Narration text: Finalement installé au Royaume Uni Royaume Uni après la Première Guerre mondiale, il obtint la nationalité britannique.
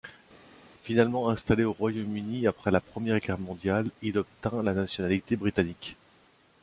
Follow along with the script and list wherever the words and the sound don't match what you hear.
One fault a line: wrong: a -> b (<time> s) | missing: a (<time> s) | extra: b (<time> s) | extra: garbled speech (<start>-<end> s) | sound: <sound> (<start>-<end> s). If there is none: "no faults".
missing: Royaume Uni (2.5 s)